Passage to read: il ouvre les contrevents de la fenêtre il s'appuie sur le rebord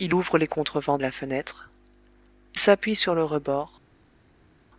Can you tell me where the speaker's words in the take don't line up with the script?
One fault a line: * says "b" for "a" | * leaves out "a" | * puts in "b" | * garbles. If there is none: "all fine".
* leaves out "de"
* leaves out "il"